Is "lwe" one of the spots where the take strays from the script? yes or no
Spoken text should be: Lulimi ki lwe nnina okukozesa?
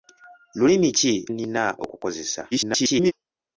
yes